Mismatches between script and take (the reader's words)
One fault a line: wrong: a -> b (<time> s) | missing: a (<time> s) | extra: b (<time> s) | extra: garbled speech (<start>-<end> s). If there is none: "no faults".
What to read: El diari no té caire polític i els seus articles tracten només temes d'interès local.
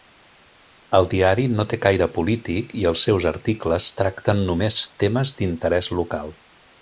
no faults